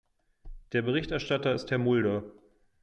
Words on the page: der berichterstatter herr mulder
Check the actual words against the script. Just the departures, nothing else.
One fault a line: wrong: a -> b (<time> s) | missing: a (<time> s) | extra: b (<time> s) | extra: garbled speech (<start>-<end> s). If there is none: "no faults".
extra: ist (1.5 s)